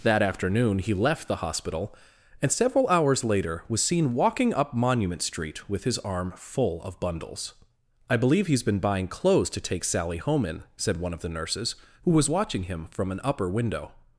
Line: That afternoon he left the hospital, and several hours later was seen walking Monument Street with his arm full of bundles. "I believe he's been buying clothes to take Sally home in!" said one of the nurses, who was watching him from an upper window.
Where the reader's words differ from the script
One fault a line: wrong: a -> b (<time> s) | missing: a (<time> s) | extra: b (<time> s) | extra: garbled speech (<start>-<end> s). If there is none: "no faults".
extra: up (4.5 s)